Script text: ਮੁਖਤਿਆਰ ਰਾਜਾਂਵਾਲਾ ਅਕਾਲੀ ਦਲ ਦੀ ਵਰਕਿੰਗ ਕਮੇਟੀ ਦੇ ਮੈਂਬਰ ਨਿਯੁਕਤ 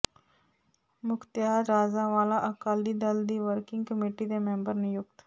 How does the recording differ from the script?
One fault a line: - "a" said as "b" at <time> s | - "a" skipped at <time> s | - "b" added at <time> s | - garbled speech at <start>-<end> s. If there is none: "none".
none